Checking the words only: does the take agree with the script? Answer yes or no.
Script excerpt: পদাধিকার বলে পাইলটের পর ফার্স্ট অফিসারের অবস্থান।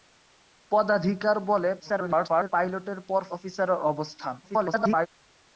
no